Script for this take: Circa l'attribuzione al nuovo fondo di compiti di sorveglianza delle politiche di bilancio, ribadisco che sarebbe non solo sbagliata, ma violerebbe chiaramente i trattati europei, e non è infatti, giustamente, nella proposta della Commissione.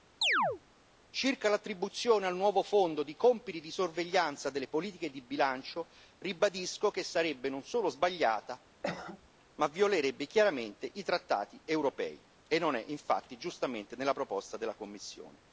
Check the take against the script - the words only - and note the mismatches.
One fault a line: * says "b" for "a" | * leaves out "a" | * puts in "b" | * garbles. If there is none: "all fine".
all fine